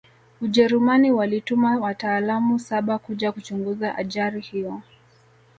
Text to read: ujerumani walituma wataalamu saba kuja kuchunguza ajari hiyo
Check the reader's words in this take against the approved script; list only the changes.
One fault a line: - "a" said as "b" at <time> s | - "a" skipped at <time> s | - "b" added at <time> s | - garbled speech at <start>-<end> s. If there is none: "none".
none